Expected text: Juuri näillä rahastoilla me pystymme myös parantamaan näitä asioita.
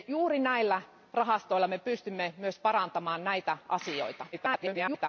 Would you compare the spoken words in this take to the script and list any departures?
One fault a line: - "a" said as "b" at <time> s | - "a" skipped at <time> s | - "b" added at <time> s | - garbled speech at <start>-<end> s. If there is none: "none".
- garbled speech at 4.3-5.1 s